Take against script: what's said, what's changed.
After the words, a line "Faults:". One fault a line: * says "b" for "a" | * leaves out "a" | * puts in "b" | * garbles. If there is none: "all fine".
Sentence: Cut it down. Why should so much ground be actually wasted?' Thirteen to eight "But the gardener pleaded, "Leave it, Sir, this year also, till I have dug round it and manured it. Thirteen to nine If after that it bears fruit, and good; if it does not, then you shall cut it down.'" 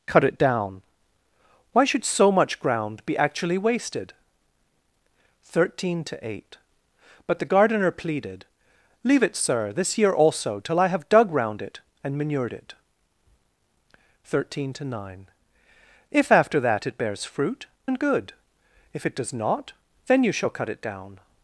Cut it down. Why should so much ground be actually wasted?' Thirteen to eight "But the gardener pleaded, "Leave it, Sir, this year also, till I have dug round it and manured it. Thirteen to nine If after that it bears fruit, and good; if it does not, then you shall cut it down.'"
Faults:
all fine